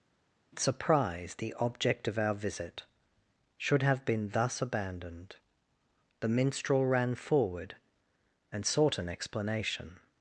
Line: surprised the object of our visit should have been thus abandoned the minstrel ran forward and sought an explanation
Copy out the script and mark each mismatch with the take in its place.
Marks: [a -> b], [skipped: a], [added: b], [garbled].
surprised the object of our visit should have been thus abandoned the minstrel ran forward and sought an explanation